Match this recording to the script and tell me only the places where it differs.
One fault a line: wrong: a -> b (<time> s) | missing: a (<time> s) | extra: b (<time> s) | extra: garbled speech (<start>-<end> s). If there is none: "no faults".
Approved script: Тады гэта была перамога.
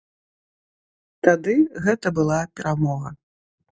no faults